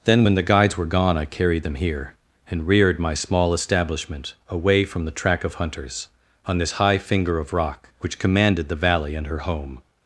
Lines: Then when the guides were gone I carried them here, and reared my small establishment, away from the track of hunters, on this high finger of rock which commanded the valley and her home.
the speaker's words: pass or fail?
pass